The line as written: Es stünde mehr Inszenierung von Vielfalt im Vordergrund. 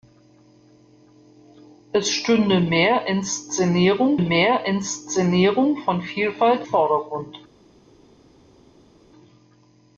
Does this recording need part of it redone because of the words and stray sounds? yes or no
yes